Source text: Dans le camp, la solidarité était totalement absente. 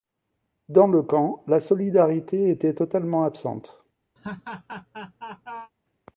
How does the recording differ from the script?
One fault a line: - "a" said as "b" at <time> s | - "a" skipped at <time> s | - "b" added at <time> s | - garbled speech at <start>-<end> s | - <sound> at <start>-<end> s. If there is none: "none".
- laugh at 4.2-5.7 s